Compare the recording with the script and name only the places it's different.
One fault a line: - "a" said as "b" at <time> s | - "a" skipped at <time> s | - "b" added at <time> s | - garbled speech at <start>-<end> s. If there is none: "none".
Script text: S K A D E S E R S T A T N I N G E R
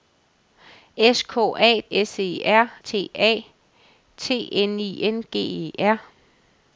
- "D E" skipped at 1.8 s
- "S" skipped at 2.7 s